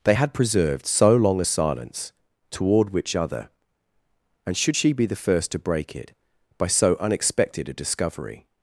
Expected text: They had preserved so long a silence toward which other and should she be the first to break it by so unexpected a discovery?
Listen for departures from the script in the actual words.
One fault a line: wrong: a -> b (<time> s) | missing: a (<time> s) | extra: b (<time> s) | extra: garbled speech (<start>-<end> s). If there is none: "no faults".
no faults